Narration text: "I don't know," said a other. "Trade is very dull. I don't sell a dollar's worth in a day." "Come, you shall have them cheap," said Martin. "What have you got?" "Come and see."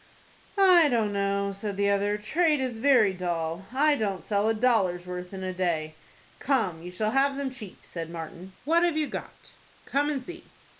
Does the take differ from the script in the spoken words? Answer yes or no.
yes